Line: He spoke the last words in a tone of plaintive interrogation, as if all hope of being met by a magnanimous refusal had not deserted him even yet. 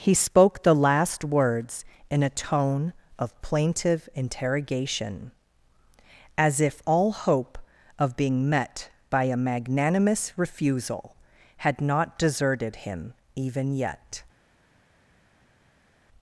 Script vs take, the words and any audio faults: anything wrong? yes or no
no